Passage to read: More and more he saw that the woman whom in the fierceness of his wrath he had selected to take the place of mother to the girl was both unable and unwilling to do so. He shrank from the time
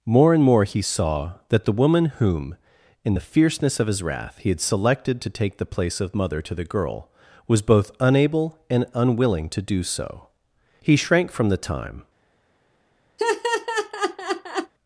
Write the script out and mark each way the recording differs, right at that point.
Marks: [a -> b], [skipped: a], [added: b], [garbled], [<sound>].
More and more he saw that the woman whom in the fierceness of his wrath he had selected to take the place of mother to the girl was both unable and unwilling to do so. He shrank from the time [laugh]